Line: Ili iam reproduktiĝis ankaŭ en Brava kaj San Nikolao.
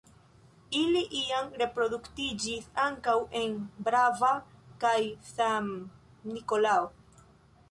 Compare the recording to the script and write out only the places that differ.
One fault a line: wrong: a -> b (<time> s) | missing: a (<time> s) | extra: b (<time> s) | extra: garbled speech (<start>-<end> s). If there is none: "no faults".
no faults